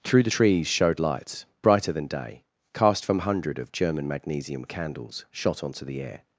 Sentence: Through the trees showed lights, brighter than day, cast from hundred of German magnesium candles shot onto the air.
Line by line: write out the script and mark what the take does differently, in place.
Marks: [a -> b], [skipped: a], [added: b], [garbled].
Through the trees showed lights, brighter than day, cast from hundred of German magnesium candles shot onto the air.